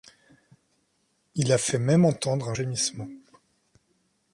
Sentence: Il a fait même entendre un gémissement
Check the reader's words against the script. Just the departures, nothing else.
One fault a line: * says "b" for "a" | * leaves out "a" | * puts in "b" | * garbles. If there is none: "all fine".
all fine